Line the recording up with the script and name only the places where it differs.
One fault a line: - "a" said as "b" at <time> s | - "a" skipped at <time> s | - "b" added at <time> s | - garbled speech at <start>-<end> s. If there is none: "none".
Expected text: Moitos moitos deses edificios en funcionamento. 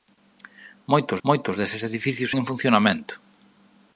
none